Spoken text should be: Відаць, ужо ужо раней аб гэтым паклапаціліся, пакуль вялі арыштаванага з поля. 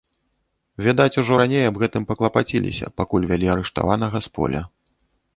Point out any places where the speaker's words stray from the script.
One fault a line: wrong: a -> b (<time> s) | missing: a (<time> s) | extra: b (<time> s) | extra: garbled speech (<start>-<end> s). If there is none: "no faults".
missing: ужо (1.4 s)